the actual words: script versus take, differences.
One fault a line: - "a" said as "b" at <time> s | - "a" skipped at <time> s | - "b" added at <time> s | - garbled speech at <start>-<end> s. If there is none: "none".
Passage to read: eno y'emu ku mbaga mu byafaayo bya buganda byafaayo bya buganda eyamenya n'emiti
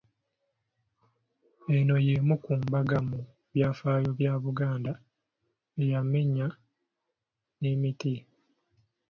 - "byafaayo bya buganda" skipped at 4.9 s